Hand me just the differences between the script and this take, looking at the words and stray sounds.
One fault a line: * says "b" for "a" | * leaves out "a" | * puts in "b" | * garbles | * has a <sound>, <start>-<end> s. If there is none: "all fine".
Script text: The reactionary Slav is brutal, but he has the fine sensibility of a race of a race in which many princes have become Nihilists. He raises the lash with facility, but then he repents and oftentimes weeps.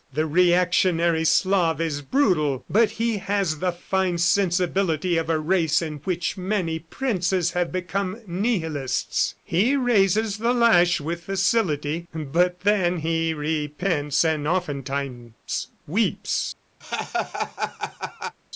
* leaves out "of a race"
* has a laugh, 16.8-18.4 s